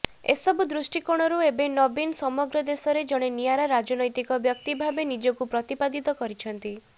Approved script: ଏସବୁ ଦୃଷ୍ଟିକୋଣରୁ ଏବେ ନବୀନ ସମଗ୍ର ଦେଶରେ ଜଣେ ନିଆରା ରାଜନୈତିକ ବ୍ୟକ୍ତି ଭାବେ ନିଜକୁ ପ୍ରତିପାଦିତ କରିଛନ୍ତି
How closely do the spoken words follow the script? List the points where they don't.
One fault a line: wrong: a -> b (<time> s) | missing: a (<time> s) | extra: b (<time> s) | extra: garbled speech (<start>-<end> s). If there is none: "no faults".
no faults